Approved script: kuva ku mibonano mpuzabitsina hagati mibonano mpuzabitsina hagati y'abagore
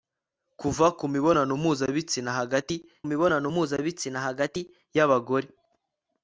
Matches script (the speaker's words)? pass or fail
pass